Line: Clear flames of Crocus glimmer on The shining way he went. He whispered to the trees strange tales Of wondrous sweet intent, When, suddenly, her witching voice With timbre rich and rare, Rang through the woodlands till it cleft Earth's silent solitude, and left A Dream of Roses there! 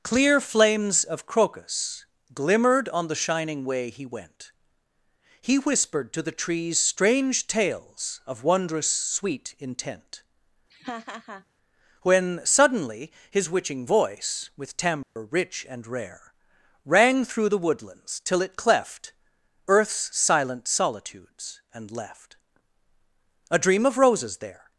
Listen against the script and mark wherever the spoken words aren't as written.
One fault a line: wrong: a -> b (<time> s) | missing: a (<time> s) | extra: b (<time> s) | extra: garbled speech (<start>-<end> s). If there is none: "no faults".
wrong: glimmer -> glimmered (2.3 s)
wrong: her -> his (13.3 s)
wrong: solitude -> solitudes (20.7 s)